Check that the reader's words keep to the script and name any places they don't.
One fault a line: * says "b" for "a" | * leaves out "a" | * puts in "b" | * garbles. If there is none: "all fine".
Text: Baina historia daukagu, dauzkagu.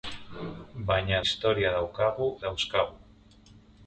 all fine